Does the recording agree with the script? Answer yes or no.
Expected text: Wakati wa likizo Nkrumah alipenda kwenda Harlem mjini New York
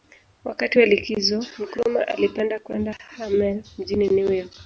yes